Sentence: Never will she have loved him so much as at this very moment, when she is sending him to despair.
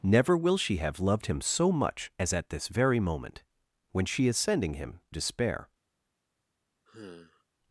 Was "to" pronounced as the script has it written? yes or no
no